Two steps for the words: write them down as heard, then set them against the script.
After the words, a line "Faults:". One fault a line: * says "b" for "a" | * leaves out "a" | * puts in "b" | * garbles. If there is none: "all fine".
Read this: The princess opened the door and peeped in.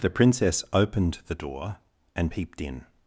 The princess opened the door and peeped in.
Faults:
all fine